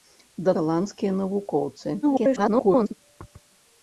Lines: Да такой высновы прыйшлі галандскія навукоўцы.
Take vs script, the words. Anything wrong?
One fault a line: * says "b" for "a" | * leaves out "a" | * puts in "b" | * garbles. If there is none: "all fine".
* leaves out "такой высновы прыйшлі"
* garbles